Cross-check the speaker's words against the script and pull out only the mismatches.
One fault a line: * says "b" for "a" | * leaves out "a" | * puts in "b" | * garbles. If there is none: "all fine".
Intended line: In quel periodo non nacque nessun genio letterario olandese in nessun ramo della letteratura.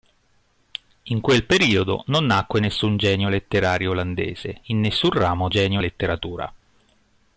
* says "genio" for "della"